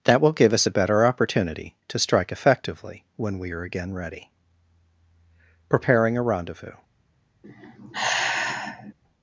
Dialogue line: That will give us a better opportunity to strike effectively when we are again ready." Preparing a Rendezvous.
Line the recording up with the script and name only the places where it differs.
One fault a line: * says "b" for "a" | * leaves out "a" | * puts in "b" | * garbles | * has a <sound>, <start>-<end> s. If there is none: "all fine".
* has a sigh, 7.4-8.9 s